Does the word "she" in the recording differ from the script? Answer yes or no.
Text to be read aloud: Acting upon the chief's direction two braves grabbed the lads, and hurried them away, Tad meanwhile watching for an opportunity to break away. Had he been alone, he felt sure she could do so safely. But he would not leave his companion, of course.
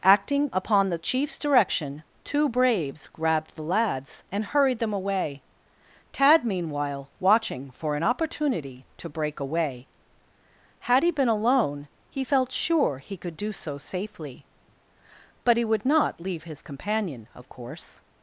yes